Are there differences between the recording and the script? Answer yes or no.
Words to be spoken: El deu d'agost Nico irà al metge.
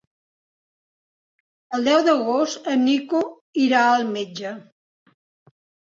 yes